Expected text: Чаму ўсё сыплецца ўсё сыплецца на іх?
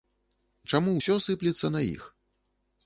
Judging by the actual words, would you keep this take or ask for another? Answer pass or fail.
fail